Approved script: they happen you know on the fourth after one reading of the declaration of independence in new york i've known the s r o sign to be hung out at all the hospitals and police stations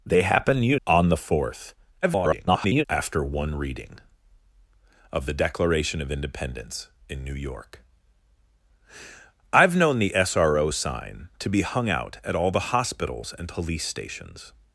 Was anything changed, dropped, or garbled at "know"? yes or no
yes